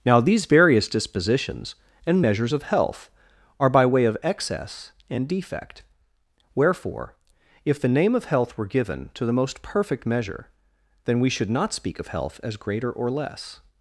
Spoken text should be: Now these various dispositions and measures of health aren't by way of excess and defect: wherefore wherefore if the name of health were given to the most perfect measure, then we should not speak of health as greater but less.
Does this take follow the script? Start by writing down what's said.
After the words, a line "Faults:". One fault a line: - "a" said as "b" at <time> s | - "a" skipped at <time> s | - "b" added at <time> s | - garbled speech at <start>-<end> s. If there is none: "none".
Now these various dispositions and measures of health are by way of excess and defect: wherefore if the name of health were given to the most perfect measure, then we should not speak of health as greater or less.
Faults:
- "aren't" said as "are" at 3.6 s
- "wherefore" skipped at 7.2 s
- "but" said as "or" at 12.9 s